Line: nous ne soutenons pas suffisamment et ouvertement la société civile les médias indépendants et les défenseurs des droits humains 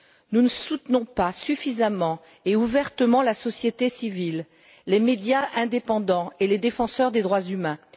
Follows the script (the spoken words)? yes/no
yes